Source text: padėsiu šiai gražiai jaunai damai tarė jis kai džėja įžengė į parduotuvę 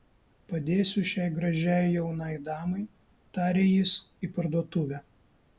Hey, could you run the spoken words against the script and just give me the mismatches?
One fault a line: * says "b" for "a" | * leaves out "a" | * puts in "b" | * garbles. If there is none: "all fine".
* leaves out "kai džėja įžengė"